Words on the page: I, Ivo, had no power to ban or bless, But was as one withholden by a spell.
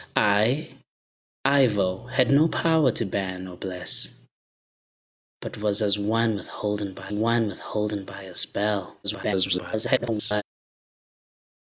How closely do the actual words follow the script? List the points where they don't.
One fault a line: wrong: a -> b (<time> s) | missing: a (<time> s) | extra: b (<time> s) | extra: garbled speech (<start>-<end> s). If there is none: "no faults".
extra: one withholden by (7.1 s)
extra: garbled speech (9.0-10.4 s)